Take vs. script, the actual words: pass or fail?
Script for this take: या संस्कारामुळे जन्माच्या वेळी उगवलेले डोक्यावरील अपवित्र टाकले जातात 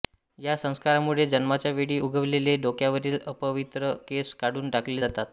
fail